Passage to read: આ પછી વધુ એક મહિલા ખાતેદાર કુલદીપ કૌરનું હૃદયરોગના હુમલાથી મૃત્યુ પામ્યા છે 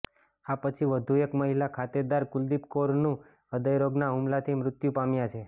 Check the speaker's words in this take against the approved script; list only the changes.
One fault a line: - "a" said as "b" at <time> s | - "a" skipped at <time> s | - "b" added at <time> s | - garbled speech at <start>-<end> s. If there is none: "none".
none